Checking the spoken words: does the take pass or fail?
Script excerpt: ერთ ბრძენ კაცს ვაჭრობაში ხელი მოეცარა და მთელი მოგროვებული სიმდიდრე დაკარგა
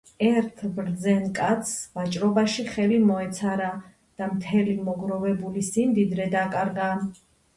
pass